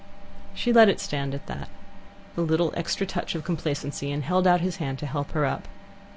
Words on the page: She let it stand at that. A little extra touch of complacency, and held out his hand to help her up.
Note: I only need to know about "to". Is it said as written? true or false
true